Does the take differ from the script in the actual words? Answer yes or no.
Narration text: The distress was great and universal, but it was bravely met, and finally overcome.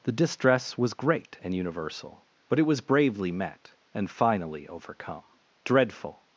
yes